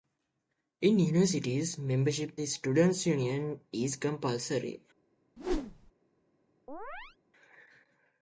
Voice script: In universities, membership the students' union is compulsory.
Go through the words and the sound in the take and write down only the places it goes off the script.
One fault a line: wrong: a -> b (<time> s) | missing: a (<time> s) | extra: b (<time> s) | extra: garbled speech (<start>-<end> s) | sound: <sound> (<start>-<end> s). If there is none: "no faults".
sound: whoosh (5.4-5.9 s)
sound: chirp (6.7-7.2 s)